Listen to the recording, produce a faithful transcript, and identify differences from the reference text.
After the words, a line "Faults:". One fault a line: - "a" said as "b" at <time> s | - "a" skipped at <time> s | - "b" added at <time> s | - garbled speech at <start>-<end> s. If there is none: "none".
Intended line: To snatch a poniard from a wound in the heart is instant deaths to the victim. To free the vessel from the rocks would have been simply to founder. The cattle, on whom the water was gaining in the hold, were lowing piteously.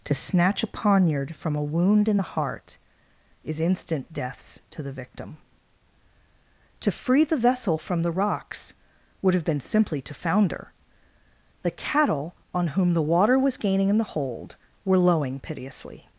To snatch a poniard from a wound in the heart is instant deaths to the victim. To free the vessel from the rocks would have been simply to founder. The cattle, on whom the water was gaining in the hold, were lowing piteously.
Faults:
none